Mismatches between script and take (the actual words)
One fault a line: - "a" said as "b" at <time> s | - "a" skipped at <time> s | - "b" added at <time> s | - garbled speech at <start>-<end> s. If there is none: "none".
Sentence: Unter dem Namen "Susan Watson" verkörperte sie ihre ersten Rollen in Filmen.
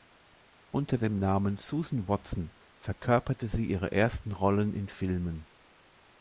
none